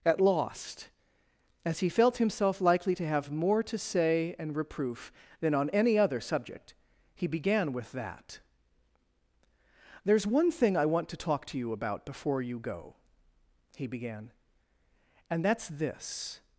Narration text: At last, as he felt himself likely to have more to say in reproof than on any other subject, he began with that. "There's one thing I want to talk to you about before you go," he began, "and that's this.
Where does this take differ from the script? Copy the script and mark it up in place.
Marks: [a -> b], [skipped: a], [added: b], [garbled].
At [last, -> lost] as he felt himself likely to have more to say [in -> and] reproof than on any other subject, he began with that. "There's one thing I want to talk to you about before you go," he began, "and that's this.